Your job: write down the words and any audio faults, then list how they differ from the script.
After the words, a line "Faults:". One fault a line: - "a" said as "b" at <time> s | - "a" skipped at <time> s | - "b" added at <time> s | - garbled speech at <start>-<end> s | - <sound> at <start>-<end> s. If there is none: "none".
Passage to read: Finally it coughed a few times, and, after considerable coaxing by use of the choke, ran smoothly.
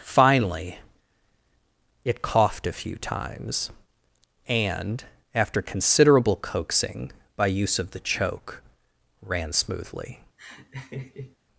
Finally it coughed a few times, and, after considerable coaxing by use of the choke, ran smoothly.
Faults:
- laugh at 10.4-11.4 s